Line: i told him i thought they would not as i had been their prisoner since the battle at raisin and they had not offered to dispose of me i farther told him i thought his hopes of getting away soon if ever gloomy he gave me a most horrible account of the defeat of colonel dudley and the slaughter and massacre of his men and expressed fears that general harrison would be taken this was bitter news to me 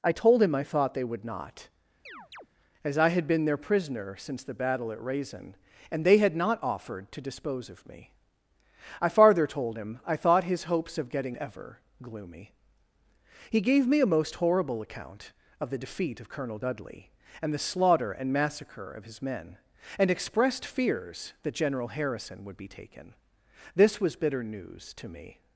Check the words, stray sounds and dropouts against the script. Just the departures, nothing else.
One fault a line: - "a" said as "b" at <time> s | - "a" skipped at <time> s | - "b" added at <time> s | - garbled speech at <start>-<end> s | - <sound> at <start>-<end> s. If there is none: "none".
- chirp at 2.1-2.5 s
- "away soon if" skipped at 11.3 s